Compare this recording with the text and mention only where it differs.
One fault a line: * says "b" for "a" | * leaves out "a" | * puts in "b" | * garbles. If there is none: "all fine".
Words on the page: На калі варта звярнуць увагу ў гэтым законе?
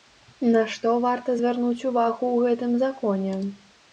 * says "што" for "калі"